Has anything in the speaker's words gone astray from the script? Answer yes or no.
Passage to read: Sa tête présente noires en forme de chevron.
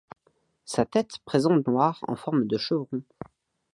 no